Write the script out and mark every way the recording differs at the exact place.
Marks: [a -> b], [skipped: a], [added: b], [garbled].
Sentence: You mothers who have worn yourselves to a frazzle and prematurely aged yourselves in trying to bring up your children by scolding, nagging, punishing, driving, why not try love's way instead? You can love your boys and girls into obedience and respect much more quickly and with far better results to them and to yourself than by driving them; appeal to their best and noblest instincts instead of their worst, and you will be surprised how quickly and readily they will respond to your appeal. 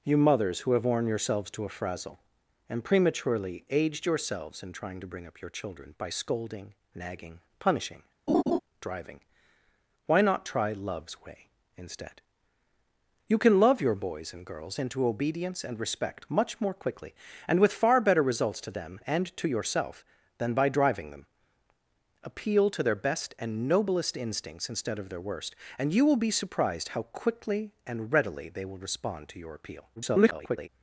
You mothers who have worn yourselves to a frazzle and prematurely aged yourselves in trying to bring up your children by scolding, nagging, punishing, driving, why not try love's way instead? You can love your boys and girls into obedience and respect much more quickly and with far better results to them and to yourself than by driving them; appeal to their best and noblest instincts instead of their worst, and you will be surprised how quickly and readily they will respond to your appeal. [garbled]